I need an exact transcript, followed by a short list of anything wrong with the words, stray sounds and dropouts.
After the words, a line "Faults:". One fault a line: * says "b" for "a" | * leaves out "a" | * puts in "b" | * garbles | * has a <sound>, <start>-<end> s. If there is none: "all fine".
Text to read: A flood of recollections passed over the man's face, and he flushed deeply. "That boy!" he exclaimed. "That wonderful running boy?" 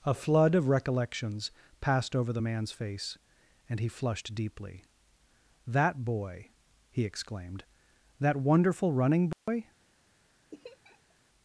A flood of recollections passed over the man's face, and he flushed deeply. "That boy!" he exclaimed. "That wonderful running boy?"
Faults:
* has a dropout, 9.3-9.5 s
* has a laugh, 10.5-11.1 s